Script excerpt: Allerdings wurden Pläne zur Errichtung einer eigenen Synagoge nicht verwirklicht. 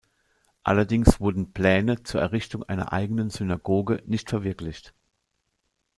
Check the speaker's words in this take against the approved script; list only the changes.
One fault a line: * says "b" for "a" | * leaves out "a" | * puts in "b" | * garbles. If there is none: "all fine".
all fine